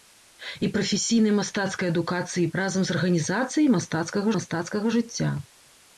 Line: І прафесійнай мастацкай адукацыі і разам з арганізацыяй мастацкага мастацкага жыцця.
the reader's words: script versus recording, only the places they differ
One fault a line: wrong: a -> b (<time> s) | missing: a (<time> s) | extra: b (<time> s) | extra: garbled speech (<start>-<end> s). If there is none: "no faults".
no faults